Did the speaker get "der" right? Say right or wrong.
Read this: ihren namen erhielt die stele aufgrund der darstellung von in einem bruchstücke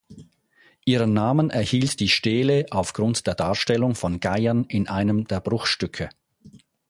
right